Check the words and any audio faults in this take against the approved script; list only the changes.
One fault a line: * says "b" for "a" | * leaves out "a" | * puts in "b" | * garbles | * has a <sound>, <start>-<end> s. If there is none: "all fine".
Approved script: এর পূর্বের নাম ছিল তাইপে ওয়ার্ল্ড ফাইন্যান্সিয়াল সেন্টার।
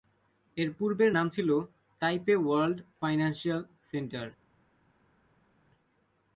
all fine